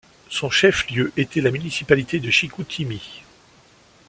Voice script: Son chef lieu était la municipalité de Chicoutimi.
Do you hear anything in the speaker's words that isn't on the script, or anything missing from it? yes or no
no